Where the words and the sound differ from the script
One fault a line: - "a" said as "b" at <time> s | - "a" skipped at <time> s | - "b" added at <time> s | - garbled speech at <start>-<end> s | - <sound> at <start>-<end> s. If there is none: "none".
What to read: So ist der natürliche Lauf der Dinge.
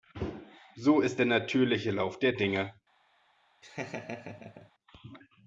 - laugh at 3.6-4.7 s